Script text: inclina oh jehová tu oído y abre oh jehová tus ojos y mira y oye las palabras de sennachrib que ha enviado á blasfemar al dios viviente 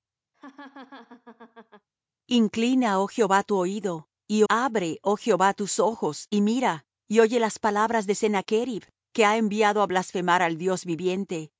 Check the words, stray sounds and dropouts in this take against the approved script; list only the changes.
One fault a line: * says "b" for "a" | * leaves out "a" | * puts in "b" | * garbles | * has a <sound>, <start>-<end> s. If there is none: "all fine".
* has a laugh, 0.3-1.9 s